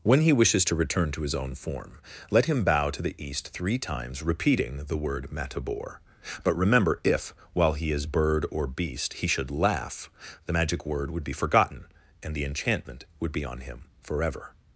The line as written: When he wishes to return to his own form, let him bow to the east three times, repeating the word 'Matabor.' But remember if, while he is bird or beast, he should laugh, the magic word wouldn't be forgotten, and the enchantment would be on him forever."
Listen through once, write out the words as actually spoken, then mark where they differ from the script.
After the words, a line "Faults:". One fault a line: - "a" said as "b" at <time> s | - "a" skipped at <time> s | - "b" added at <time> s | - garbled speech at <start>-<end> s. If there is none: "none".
When he wishes to return to his own form, let him bow to the east three times, repeating the word 'Matabor.' But remember if, while he is bird or beast, he should laugh, the magic word would be forgotten, and the enchantment would be on him forever."
Faults:
- "wouldn't" said as "would" at 11.1 s